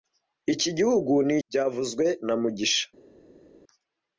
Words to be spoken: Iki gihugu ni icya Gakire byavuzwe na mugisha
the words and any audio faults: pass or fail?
fail